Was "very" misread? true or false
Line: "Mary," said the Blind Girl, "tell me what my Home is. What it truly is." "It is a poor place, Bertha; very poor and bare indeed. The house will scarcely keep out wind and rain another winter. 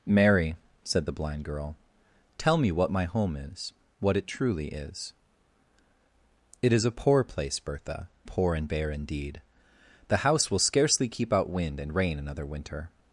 true